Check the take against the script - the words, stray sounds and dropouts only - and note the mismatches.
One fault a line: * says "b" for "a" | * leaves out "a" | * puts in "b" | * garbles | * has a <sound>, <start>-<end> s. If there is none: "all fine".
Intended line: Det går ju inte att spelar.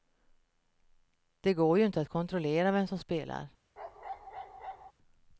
* puts in "kontrollera vem som"
* has a bark, 3.8-4.9 s